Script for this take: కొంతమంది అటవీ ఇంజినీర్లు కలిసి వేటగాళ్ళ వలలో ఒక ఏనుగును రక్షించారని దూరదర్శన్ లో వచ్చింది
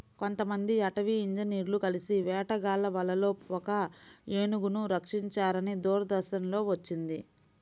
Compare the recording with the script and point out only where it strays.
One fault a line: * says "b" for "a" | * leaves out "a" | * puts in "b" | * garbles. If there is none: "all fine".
all fine